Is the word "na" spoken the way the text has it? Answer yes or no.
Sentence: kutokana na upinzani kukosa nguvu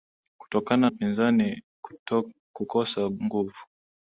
no